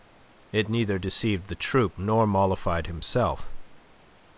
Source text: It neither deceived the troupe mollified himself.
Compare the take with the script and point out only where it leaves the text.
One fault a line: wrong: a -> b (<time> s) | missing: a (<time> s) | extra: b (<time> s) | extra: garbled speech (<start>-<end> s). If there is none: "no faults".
extra: nor (2.0 s)